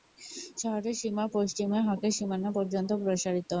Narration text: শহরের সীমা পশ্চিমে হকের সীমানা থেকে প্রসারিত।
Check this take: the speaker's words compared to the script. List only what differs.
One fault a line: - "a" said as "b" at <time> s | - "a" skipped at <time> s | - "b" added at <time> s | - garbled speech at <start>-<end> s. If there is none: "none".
- "থেকে" said as "পর্যন্ত" at 2.6 s